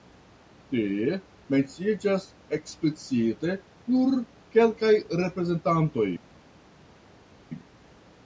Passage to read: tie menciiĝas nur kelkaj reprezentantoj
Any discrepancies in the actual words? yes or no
yes